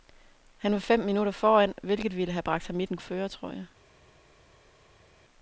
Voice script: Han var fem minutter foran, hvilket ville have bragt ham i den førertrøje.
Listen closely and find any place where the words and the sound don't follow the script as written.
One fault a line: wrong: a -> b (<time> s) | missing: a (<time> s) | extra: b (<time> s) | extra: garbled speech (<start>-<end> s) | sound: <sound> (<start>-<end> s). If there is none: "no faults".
no faults